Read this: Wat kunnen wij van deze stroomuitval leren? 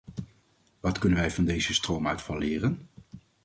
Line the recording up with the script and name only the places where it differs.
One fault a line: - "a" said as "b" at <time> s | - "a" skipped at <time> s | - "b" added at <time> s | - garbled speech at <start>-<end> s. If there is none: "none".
none